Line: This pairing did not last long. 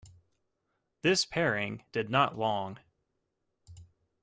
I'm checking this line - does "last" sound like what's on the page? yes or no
no